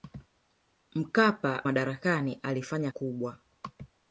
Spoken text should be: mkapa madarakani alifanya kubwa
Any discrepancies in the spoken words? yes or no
no